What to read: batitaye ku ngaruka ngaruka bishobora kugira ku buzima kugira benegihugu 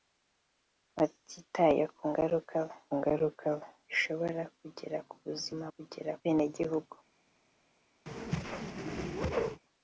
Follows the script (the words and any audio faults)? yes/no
no